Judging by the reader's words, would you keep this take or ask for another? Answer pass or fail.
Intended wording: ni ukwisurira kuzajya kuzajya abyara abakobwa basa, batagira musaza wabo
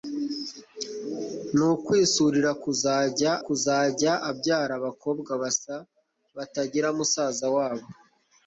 pass